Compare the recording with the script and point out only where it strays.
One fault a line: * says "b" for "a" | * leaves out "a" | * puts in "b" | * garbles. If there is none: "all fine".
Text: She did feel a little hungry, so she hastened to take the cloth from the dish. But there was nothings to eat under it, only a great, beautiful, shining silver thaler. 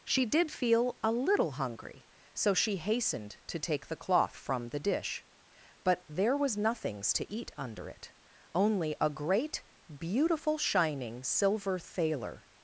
all fine